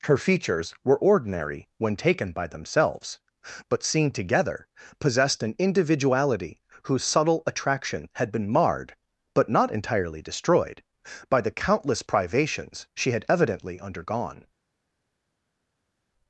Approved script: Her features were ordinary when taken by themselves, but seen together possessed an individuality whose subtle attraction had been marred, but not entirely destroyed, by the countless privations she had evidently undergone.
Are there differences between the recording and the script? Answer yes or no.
no